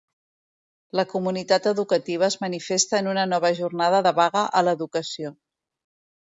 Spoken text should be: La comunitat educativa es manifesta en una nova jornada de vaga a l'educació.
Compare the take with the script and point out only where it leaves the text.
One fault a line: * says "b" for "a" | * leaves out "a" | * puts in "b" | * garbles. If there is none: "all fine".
all fine